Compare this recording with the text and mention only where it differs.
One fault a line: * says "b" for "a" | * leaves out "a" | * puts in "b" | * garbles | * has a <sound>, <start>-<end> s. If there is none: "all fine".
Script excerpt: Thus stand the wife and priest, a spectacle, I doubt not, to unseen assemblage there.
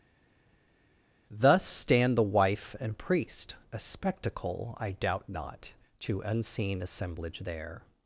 all fine